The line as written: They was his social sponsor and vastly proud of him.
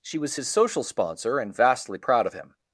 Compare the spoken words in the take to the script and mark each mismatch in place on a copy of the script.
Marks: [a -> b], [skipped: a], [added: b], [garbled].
[They -> She] was his social sponsor and vastly proud of him.